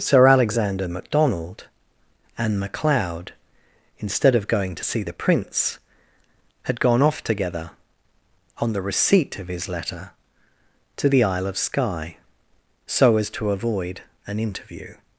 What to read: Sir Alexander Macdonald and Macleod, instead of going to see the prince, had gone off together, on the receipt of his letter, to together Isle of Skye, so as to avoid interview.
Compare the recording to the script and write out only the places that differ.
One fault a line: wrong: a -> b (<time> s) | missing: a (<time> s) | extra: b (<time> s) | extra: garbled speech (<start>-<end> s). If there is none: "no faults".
wrong: together -> the (11.1 s)
extra: an (14.3 s)